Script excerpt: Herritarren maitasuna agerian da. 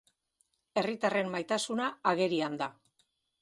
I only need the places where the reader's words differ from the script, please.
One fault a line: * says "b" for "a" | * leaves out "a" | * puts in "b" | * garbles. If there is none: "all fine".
all fine